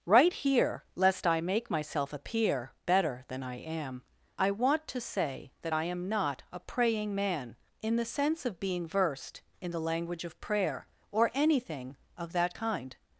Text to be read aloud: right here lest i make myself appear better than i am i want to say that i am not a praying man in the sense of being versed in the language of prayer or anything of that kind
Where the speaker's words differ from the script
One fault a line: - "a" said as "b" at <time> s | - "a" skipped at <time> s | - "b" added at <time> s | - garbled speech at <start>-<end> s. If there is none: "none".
none